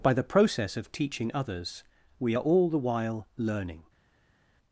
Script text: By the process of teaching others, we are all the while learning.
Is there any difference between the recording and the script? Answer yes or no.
no